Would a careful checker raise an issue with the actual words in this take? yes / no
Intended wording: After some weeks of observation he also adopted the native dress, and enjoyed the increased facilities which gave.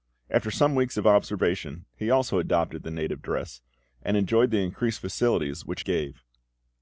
no